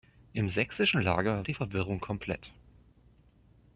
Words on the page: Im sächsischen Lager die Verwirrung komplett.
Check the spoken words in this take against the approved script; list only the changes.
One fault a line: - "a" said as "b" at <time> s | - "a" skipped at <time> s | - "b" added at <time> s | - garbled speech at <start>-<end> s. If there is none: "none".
none